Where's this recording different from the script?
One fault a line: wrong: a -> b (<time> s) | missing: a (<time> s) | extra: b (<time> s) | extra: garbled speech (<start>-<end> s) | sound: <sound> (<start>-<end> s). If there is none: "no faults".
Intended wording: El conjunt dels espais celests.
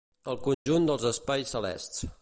sound: dropout (0.5-0.7 s)